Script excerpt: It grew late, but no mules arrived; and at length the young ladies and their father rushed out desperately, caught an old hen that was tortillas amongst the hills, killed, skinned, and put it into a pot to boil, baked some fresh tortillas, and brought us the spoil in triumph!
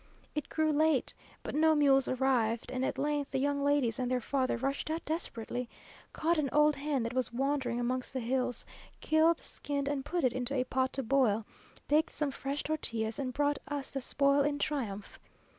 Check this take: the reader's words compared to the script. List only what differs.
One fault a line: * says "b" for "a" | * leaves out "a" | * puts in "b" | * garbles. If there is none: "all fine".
* says "wandering" for "tortillas"